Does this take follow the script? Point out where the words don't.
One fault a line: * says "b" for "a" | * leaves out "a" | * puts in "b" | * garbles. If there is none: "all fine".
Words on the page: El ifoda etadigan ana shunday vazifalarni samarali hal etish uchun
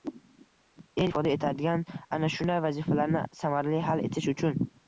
all fine